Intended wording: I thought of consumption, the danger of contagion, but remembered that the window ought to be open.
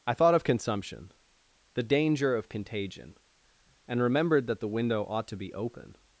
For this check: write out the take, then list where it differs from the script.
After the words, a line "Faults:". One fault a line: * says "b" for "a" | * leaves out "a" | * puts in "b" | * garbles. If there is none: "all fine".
I thought of consumption, the danger of contagion, and remembered that the window ought to be open.
Faults:
* says "and" for "but"